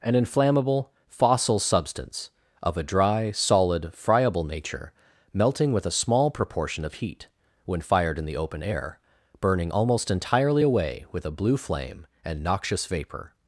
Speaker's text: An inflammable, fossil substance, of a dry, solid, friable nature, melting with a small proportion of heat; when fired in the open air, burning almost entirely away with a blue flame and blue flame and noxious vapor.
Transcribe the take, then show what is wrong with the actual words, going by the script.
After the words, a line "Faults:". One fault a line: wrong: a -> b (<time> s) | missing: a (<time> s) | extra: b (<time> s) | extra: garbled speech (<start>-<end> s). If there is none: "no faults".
An inflammable, fossil substance, of a dry, solid, friable nature, melting with a small proportion of heat; when fired in the open air, burning almost entirely away with a blue flame and noxious vapor.
Faults:
missing: blue flame and (12.4 s)